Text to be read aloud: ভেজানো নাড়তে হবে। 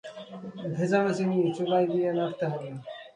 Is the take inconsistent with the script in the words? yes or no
yes